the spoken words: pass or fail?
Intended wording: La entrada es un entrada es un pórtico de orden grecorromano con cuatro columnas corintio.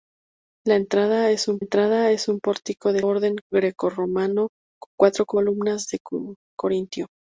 pass